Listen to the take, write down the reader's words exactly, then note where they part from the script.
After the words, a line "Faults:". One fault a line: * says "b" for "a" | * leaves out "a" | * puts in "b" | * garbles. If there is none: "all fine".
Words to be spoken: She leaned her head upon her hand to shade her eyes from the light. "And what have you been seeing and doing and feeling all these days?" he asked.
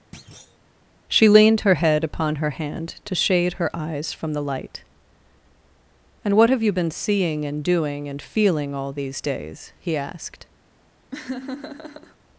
She leaned her head upon her hand to shade her eyes from the light. "And what have you been seeing and doing and feeling all these days?" he asked.
Faults:
all fine